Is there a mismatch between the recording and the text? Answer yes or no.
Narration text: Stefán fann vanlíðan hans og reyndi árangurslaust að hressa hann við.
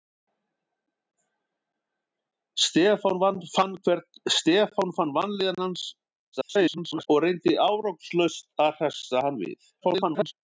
yes